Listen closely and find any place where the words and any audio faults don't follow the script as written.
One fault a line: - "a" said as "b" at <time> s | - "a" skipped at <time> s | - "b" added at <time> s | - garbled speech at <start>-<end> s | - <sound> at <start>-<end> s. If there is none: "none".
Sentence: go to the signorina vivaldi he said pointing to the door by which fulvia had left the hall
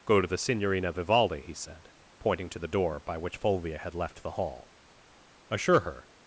- "assure her" added at 5.5 s